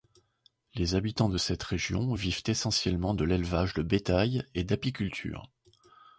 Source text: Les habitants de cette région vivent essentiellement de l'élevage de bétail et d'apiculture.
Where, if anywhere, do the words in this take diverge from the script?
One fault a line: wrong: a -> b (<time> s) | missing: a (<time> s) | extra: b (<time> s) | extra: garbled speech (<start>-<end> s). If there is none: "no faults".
no faults